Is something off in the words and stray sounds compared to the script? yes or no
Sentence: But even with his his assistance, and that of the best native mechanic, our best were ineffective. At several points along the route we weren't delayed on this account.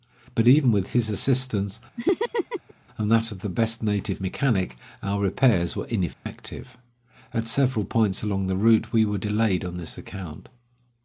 yes